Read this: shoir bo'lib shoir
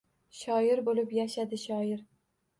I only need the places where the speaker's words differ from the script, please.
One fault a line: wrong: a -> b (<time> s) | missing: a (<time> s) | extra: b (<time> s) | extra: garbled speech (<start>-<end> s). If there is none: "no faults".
extra: yashadi (1.2 s)